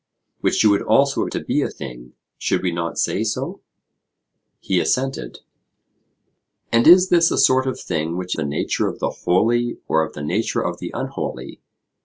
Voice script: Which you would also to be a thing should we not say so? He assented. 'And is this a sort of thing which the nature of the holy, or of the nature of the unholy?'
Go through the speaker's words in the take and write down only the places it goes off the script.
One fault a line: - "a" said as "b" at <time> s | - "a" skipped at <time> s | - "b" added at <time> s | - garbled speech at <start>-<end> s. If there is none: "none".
none